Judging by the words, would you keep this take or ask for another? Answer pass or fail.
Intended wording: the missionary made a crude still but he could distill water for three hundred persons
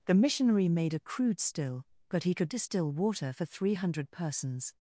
pass